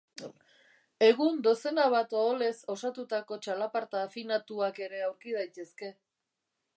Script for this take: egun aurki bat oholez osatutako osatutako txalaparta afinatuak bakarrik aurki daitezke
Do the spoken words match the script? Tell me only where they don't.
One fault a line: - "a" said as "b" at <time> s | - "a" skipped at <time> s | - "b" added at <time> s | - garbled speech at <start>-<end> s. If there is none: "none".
- "aurki" said as "dozena" at 1.5 s
- "osatutako" skipped at 3.4 s
- "bakarrik" said as "ere" at 4.9 s